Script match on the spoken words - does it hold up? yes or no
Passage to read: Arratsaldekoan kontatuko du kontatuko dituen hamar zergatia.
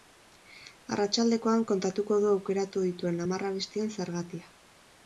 no